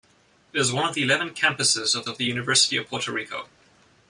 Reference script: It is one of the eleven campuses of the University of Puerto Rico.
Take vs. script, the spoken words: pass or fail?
fail